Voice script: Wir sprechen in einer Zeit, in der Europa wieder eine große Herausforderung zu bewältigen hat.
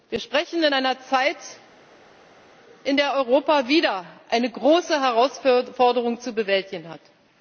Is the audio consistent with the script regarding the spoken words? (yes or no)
yes